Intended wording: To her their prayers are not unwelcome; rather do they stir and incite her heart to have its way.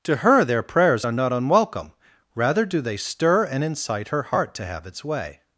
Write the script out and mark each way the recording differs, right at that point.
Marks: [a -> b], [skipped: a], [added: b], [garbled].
To her their prayers are not unwelcome; rather do they stir and incite her heart to have its way.